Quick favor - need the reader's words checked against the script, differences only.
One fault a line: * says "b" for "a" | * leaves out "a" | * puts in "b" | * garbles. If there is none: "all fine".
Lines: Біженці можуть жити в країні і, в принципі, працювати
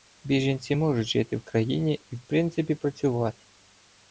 all fine